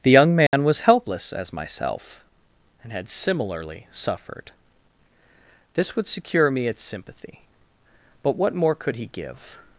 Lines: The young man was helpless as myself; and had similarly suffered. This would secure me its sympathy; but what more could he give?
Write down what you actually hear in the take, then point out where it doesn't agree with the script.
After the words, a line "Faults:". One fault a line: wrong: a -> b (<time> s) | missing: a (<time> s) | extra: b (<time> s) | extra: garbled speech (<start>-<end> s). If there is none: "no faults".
The young man was helpless as myself; and had similarly suffered. This would secure me its sympathy; but what more could he give?
Faults:
no faults